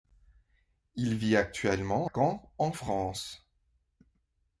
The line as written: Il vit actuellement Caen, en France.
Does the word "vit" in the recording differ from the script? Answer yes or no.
no